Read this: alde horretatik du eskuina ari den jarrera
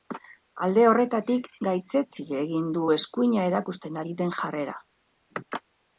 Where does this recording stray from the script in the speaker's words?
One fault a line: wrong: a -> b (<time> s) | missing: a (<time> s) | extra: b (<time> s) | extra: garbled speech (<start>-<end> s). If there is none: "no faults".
extra: gaitzetsi egin (1.7 s)
extra: erakusten (3.5 s)